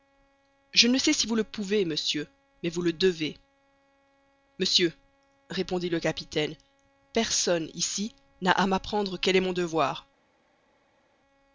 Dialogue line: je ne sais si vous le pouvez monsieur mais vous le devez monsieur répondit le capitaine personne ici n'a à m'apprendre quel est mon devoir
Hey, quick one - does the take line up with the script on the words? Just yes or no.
yes